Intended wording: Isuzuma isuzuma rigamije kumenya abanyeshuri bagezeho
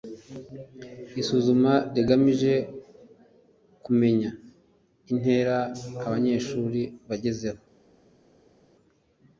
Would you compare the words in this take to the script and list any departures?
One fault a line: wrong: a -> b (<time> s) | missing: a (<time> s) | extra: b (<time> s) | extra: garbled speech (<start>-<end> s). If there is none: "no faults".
missing: isuzuma (1.7 s)
extra: intera (5.1 s)